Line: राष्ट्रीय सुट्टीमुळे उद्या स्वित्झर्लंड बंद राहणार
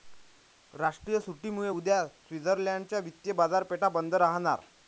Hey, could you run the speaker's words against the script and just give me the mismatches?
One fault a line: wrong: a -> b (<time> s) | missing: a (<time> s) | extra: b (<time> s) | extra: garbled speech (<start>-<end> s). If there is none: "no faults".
extra: च्या वित्तीय बाजारपेठा (2.8 s)